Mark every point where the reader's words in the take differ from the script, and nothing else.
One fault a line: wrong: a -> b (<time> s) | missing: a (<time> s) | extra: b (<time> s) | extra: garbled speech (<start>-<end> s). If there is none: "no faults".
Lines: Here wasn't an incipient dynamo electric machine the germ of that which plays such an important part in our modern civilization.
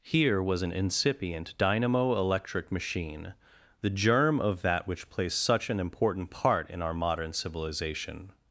wrong: wasn't -> was (0.4 s)